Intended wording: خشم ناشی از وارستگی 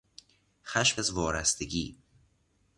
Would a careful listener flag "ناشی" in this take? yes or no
yes